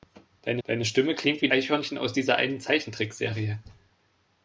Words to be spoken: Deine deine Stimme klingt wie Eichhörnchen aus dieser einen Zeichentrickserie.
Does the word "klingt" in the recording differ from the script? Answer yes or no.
no